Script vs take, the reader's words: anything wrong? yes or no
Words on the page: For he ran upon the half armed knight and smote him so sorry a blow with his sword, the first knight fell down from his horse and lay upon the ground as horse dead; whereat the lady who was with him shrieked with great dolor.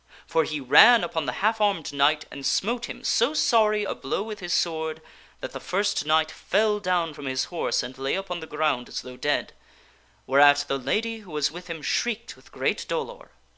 yes